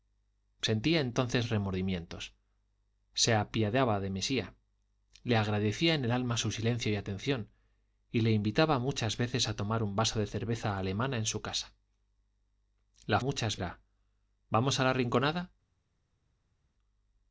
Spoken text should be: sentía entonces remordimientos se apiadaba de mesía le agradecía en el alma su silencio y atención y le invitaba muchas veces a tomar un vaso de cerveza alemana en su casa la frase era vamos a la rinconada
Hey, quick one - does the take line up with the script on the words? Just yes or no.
no